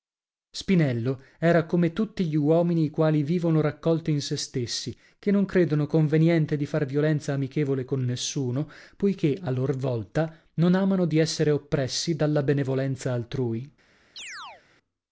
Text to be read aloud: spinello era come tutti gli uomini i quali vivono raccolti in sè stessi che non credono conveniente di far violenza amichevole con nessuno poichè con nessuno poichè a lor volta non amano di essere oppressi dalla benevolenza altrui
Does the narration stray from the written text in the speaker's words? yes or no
yes